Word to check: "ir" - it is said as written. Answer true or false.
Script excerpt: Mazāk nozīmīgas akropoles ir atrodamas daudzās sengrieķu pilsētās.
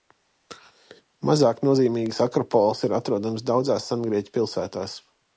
true